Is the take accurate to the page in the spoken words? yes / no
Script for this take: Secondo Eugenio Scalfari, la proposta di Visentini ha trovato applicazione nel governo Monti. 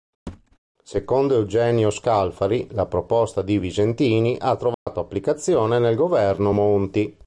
yes